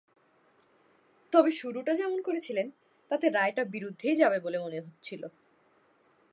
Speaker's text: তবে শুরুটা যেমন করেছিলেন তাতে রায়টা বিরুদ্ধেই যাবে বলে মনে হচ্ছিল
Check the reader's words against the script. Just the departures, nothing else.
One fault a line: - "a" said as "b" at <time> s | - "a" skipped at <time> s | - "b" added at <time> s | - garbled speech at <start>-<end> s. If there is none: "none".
none